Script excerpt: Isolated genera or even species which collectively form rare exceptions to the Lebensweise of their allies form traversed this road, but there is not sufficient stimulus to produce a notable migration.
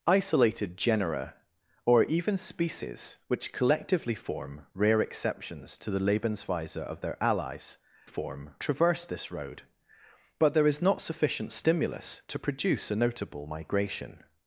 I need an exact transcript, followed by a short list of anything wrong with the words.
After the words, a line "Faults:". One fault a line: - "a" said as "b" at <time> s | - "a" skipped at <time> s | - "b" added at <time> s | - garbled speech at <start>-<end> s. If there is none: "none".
Isolated genera or even species which collectively form rare exceptions to the Lebensweise of their allies form traversed this road, but there is not sufficient stimulus to produce a notable migration.
Faults:
none